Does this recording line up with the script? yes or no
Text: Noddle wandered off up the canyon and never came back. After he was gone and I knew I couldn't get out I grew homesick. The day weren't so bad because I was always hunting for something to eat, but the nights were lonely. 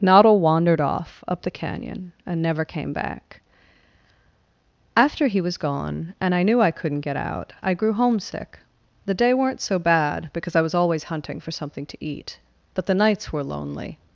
yes